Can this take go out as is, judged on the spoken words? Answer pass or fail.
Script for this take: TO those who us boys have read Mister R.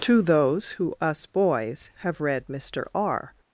pass